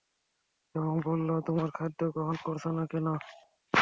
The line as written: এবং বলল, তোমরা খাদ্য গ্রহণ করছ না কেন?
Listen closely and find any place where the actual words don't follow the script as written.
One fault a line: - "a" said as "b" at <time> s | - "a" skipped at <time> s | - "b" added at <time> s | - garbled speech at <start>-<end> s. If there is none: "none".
none